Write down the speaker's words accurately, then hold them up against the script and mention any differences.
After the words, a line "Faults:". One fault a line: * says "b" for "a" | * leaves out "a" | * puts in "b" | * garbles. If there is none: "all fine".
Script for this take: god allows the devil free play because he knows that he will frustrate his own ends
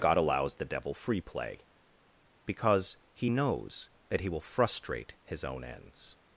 god allows the devil free play because he knows that he will frustrate his own ends
Faults:
all fine